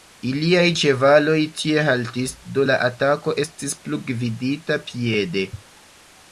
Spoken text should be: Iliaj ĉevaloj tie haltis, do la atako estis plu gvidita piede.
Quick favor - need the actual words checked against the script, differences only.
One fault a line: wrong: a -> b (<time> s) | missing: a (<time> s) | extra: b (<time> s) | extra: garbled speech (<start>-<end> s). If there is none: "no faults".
no faults